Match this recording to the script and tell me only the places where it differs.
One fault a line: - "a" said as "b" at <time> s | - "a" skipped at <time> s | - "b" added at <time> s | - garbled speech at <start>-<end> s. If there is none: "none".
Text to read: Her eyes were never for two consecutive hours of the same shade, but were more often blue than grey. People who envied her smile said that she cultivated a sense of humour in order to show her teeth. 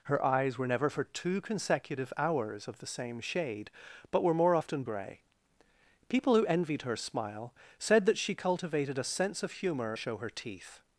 - "blue than" skipped at 4.8 s
- "in order to" skipped at 9.9 s